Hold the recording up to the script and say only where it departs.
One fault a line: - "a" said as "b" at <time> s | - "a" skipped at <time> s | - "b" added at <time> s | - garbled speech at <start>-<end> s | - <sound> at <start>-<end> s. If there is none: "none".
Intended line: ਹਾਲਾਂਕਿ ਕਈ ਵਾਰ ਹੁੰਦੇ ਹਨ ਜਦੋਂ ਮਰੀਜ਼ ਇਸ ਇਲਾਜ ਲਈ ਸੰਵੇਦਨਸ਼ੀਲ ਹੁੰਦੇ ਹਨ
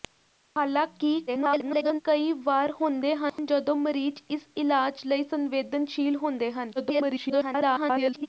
- garbled speech at 1.3-2.0 s
- dropout at 3.3-3.4 s
- garbled speech at 6.8-8.3 s